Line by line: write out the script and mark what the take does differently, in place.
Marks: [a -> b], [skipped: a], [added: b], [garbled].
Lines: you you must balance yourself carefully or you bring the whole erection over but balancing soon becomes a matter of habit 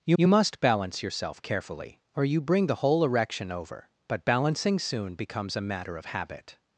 you you must balance yourself carefully or you bring the whole erection over but balancing soon becomes a matter of habit